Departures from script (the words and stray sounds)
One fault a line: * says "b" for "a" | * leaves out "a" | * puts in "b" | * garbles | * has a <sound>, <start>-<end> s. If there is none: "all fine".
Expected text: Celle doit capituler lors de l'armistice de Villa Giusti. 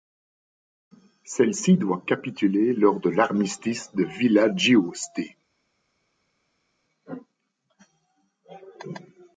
* puts in "ci"